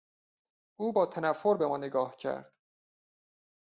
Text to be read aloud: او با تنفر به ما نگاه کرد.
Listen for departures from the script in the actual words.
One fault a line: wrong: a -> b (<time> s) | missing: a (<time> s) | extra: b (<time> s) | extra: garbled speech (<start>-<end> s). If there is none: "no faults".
no faults